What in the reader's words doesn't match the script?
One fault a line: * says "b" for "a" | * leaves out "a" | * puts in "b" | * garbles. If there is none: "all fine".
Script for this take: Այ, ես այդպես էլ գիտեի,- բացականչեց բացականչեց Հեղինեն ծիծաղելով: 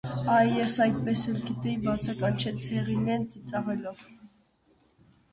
* leaves out "բացականչեց"